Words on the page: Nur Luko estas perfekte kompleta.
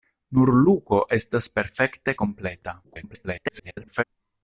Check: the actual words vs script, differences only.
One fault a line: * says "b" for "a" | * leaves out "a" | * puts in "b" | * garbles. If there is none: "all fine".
* garbles